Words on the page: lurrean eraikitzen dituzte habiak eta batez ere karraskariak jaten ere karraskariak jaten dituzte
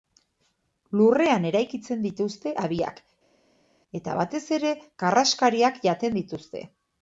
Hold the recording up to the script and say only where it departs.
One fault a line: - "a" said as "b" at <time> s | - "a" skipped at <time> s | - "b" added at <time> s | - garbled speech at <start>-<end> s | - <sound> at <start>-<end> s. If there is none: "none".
- "ere karraskariak jaten" skipped at 6.2 s